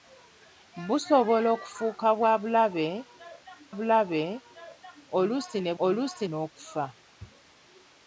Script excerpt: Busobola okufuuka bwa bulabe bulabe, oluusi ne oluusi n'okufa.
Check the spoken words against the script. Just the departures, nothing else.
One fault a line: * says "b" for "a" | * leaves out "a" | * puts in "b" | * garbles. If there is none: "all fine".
all fine